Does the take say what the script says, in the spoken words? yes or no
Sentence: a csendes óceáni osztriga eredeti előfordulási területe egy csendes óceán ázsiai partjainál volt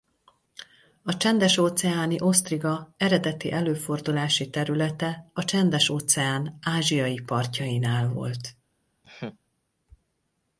no